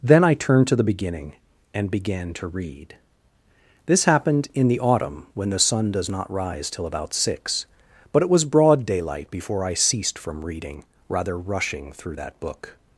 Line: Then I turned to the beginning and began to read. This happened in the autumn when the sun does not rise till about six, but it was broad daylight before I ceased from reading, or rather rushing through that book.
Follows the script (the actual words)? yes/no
no